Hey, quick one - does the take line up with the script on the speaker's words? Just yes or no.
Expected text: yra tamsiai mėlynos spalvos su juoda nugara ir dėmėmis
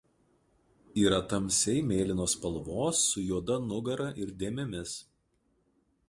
yes